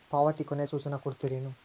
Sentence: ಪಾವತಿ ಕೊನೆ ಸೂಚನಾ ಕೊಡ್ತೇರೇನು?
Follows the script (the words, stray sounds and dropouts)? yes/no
yes